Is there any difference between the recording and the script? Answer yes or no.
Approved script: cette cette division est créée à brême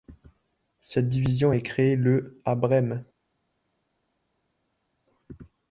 yes